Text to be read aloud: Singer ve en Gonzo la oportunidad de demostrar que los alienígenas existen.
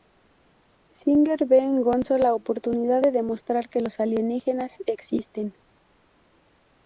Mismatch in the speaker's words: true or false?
false